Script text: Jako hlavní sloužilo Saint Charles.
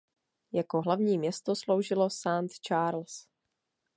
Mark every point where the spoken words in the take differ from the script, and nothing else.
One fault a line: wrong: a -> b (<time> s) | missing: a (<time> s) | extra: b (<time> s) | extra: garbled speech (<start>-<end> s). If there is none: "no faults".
extra: město (1.2 s)